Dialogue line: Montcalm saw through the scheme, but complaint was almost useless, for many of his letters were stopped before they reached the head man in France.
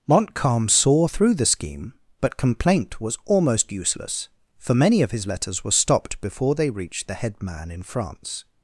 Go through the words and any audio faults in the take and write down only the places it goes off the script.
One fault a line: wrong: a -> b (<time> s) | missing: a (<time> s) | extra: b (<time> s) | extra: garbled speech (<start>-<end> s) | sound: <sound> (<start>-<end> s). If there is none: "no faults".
no faults